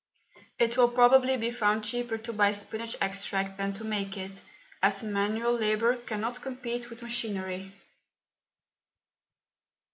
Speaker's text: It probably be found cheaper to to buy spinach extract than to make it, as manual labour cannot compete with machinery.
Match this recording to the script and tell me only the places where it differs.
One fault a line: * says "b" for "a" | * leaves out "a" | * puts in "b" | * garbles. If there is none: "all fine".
* puts in "will"
* leaves out "to"